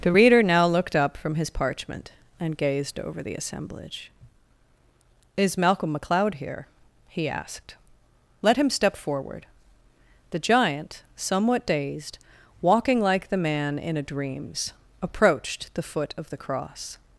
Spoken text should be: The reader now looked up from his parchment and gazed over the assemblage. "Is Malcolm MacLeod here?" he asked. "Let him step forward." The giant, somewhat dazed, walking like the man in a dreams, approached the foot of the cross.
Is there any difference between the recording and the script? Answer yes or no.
no